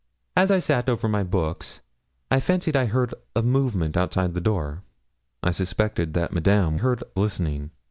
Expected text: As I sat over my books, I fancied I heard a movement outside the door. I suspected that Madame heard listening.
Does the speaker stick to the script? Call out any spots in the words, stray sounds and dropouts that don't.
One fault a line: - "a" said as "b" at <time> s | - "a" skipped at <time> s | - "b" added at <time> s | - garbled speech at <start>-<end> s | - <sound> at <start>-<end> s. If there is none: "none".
none